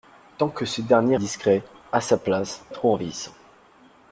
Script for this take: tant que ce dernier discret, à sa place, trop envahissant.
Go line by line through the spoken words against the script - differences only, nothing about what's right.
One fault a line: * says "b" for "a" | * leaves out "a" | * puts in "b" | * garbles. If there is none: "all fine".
all fine